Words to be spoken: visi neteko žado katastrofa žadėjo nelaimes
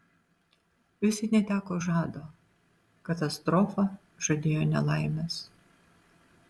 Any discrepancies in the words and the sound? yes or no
no